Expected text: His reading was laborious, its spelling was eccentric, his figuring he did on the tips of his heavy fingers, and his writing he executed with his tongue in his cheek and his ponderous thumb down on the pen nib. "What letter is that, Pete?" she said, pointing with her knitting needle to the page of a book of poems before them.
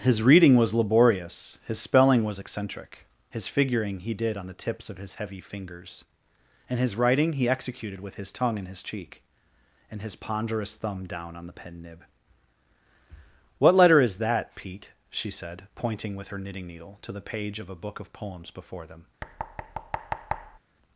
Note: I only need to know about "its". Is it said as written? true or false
false